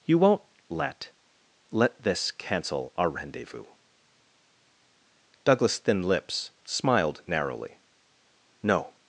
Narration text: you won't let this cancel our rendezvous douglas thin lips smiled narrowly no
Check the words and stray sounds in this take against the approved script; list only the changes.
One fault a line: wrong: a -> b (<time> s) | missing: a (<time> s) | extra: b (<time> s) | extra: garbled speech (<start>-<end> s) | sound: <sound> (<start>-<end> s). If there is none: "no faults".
extra: let (1.7 s)